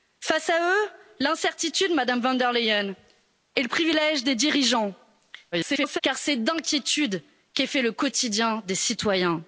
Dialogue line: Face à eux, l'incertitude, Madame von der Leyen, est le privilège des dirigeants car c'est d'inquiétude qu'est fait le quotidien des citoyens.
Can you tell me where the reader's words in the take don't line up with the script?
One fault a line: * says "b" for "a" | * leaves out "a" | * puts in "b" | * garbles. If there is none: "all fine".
* garbles